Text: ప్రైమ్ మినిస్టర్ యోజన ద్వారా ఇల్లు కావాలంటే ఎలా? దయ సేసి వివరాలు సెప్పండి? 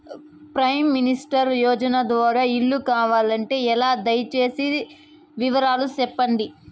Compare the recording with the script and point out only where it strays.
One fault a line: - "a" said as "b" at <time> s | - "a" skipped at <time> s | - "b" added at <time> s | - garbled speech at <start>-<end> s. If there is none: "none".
none